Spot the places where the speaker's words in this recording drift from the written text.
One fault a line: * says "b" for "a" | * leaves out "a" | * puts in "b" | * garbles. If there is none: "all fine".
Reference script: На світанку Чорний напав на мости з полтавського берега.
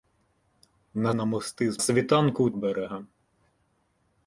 * leaves out "світанку Чорний напав"
* says "світанку" for "полтавського"